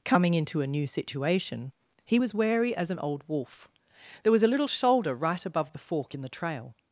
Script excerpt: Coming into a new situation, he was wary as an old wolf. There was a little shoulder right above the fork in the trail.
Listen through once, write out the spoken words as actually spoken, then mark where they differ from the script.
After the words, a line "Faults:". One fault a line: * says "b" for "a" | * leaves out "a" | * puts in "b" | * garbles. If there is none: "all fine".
Coming into a new situation, he was wary as an old wolf. There was a little shoulder right above the fork in the trail.
Faults:
all fine